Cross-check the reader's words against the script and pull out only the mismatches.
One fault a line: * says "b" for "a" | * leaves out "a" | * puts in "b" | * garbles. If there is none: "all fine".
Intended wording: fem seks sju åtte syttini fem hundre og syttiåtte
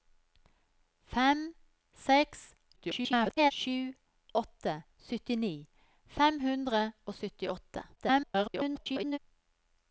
* garbles
* garbles